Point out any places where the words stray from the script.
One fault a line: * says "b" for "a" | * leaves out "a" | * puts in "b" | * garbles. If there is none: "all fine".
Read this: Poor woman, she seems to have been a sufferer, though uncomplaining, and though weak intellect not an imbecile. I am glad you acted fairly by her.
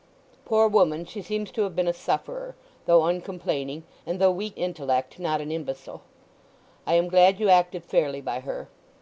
all fine